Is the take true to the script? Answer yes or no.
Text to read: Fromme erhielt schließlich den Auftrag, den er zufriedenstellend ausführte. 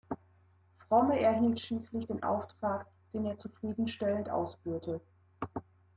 yes